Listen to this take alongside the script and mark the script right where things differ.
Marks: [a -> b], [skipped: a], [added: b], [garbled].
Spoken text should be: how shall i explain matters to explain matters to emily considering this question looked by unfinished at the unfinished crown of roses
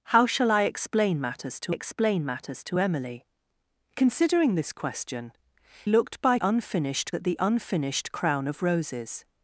how shall i explain matters to explain matters to emily considering this question looked by unfinished at the unfinished crown of roses